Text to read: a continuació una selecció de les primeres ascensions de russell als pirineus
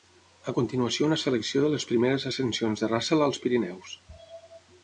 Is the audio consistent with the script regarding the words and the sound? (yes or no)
yes